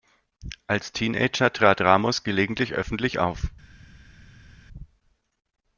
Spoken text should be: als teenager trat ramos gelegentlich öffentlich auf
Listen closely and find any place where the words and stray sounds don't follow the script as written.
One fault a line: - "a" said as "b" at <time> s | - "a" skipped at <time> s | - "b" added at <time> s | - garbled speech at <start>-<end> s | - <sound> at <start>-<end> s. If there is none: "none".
none